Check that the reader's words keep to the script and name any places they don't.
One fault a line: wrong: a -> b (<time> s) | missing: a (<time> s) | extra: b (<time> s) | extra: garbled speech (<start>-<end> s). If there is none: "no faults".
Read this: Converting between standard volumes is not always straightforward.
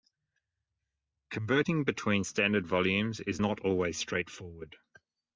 no faults